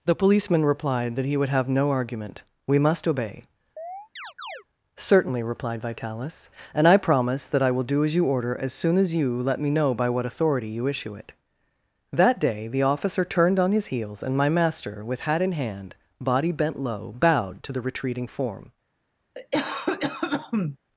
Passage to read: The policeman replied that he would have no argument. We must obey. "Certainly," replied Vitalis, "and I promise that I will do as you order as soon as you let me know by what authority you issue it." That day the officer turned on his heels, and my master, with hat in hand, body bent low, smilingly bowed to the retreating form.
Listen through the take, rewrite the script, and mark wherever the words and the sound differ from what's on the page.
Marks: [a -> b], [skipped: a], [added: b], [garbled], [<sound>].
The policeman replied that he would have no argument. We must obey. [chirp] "Certainly," replied Vitalis, "and I promise that I will do as you order as soon as you let me know by what authority you issue it." That day the officer turned on his heels, and my master, with hat in hand, body bent low, [skipped: smilingly] bowed to the retreating form. [cough]